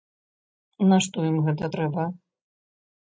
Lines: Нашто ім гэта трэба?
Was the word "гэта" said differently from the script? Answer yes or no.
no